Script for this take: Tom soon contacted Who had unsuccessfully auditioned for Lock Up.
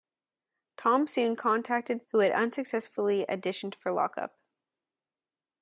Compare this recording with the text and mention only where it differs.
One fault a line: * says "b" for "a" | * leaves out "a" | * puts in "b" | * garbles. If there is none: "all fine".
all fine